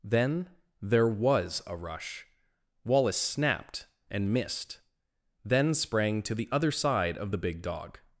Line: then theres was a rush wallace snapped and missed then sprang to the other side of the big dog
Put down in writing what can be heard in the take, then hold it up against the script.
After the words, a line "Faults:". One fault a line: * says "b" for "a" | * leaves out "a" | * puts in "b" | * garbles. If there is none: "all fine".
then there was a rush wallace snapped and missed then sprang to the other side of the big dog
Faults:
* says "there" for "theres"